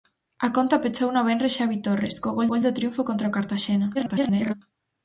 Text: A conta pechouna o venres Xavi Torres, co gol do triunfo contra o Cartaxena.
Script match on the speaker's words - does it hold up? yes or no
no